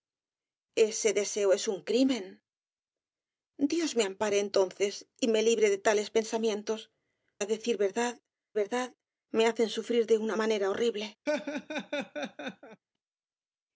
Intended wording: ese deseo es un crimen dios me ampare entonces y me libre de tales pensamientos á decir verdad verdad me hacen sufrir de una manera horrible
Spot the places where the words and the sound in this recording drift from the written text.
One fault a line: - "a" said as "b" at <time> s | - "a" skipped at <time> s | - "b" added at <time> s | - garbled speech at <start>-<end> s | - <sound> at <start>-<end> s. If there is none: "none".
- laugh at 11.3-12.8 s